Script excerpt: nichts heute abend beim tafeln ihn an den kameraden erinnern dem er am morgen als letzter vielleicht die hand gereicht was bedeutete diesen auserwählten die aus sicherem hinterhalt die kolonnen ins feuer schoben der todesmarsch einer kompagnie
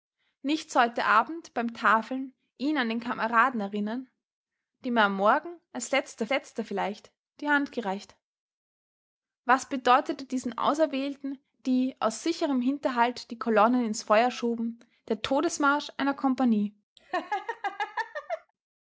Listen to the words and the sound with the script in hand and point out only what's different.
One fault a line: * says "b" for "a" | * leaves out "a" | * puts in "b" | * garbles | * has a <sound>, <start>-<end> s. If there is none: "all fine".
* puts in "letzter"
* has a laugh, 17.0-18.5 s